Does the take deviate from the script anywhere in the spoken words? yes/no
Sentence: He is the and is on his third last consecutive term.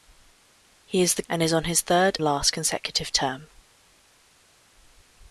no